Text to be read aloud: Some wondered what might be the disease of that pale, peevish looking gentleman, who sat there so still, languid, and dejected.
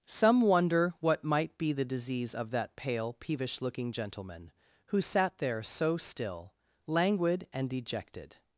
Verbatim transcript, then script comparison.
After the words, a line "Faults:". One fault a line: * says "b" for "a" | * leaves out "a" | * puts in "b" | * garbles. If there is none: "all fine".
Some wonder what might be the disease of that pale, peevish looking gentleman, who sat there so still, languid, and dejected.
Faults:
* says "wonder" for "wondered"